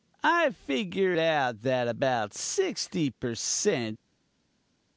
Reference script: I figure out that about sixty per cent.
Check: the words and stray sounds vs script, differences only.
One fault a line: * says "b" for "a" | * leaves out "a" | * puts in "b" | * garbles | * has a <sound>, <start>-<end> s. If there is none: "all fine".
all fine